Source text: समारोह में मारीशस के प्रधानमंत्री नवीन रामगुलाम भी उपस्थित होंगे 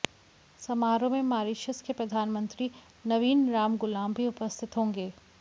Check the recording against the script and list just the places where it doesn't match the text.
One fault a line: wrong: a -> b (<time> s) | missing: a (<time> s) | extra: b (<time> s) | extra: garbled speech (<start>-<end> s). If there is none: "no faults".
no faults